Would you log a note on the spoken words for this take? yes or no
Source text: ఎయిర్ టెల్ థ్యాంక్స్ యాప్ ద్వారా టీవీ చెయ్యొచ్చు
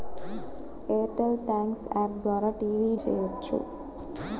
no